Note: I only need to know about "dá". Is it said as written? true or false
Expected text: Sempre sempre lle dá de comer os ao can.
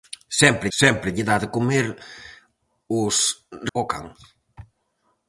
true